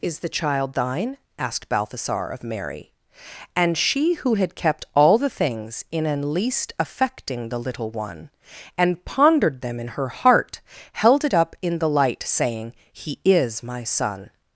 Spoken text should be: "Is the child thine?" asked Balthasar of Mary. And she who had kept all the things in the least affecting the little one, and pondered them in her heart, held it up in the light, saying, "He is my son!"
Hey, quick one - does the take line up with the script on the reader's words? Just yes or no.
no